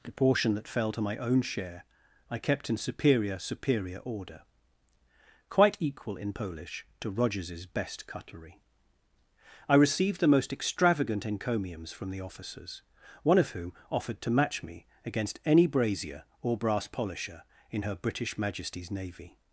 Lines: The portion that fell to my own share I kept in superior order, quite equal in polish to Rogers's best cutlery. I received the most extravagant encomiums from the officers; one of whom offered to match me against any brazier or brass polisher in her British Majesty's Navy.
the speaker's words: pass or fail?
fail